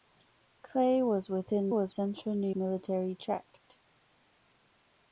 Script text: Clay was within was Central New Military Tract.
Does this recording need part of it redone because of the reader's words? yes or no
no